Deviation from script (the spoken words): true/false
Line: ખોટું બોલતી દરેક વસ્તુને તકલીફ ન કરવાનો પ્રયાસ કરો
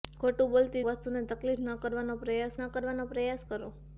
true